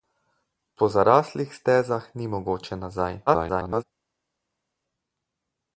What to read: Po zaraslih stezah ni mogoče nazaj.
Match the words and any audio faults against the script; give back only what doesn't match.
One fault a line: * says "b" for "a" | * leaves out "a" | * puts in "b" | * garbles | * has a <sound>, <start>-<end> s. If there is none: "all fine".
* garbles